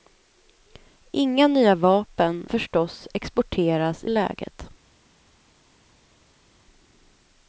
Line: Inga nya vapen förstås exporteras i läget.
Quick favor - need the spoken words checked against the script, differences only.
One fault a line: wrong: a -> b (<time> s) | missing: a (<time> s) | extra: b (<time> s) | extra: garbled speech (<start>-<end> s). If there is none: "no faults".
no faults